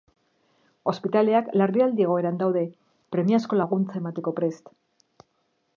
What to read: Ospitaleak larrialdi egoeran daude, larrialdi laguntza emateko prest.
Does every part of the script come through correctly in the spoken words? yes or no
no